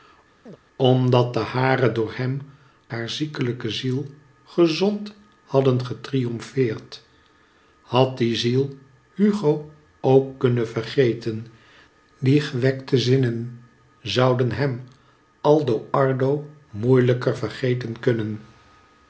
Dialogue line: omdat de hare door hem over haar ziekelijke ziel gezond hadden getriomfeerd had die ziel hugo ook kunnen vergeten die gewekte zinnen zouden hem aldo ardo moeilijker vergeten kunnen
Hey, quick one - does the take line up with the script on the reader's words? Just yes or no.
no